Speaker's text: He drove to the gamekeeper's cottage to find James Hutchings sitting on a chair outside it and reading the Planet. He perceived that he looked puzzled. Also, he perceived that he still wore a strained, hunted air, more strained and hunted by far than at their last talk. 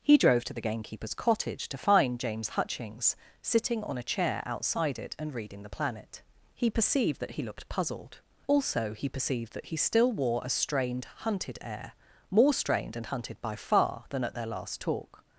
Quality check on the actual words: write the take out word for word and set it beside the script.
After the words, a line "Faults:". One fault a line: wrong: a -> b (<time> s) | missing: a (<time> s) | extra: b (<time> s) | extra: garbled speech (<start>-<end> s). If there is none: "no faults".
He drove to the gamekeeper's cottage to find James Hutchings sitting on a chair outside it and reading the Planet. He perceived that he looked puzzled. Also, he perceived that he still wore a strained, hunted air, more strained and hunted by far than at their last talk.
Faults:
no faults